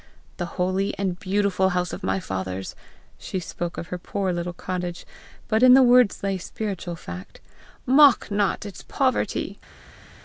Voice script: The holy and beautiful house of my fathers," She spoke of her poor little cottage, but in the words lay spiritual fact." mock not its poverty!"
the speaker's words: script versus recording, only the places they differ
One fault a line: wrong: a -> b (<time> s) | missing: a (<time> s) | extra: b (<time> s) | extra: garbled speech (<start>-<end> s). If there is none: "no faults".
no faults